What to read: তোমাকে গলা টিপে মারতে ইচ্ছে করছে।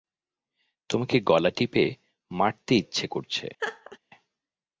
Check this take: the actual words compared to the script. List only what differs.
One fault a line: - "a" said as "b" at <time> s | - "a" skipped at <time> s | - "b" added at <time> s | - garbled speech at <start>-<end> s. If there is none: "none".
none